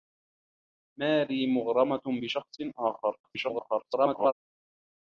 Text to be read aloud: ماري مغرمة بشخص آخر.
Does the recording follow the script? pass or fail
fail